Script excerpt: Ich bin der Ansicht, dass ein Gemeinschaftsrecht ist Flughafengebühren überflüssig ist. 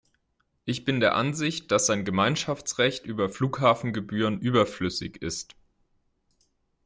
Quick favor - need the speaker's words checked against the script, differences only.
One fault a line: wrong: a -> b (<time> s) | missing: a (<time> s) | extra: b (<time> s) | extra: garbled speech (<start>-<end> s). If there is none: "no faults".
wrong: ist -> über (3.0 s)